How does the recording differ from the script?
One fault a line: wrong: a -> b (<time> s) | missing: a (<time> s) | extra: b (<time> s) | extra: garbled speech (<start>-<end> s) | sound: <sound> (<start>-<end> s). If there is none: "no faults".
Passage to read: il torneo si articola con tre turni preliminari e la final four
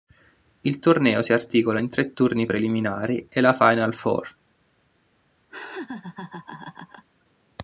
wrong: con -> in (1.8 s)
sound: laugh (5.5-7.1 s)